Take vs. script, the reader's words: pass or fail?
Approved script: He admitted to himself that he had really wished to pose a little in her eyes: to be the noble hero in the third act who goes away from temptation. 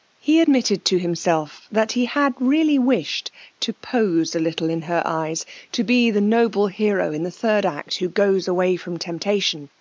pass